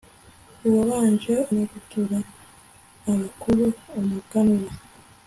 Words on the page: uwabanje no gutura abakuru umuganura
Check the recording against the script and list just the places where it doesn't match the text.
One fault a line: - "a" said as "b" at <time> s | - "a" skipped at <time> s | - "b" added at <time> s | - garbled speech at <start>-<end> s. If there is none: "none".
none